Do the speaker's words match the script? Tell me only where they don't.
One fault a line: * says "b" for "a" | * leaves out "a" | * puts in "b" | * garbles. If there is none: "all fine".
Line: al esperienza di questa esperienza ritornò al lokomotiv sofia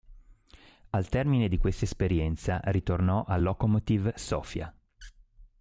* says "termine" for "esperienza"